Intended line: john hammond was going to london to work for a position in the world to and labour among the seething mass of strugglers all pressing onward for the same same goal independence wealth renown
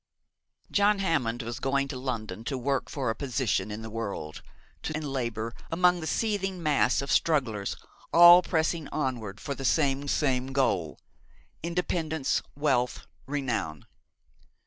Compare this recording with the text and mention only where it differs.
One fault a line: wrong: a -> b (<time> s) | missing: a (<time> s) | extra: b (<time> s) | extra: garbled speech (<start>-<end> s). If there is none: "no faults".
no faults